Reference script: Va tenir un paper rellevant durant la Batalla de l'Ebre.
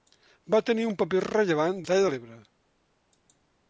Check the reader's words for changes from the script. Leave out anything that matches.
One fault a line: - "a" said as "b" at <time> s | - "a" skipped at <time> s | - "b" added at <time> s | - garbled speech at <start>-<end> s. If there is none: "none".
- "durant la" skipped at 1.8 s